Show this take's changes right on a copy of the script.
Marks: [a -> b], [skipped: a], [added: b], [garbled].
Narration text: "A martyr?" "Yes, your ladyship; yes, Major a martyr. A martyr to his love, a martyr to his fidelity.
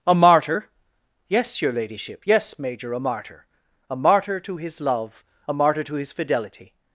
"A martyr?" "Yes, your ladyship; yes, Major a martyr. A martyr to his love, a martyr to his fidelity.